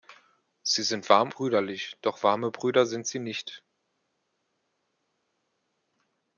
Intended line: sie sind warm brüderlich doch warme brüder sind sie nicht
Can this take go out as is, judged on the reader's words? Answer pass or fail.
pass